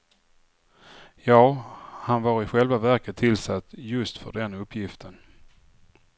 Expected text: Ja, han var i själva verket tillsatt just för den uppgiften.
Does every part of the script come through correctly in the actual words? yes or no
yes